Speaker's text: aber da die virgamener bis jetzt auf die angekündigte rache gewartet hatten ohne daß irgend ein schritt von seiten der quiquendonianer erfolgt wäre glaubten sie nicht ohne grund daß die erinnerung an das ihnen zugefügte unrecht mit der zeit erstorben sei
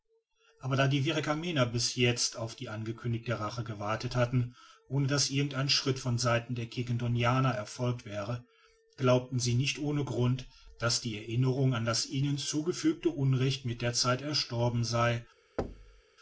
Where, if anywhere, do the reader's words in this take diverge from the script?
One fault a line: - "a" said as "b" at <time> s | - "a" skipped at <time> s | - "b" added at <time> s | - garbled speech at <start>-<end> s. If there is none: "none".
none